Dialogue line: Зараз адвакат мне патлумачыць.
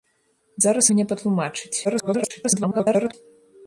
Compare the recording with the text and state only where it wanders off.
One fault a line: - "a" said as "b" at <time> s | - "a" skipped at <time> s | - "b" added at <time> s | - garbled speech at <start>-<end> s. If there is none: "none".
- "адвакат" skipped at 0.9 s
- garbled speech at 1.8-3.1 s